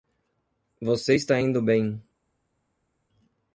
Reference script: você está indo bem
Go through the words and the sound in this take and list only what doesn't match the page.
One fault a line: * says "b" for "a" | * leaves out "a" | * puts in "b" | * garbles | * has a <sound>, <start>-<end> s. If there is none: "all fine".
all fine